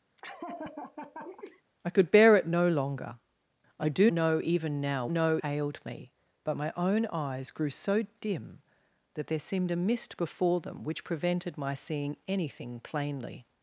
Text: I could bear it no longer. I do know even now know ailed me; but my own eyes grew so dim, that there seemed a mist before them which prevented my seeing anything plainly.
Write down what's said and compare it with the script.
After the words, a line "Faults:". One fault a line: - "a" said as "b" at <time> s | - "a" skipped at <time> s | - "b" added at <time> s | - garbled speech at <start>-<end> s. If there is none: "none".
I could bear it no longer. I do know even now know ailed me; but my own eyes grew so dim, that there seemed a mist before them which prevented my seeing anything plainly.
Faults:
none